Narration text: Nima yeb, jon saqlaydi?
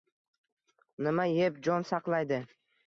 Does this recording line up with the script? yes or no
yes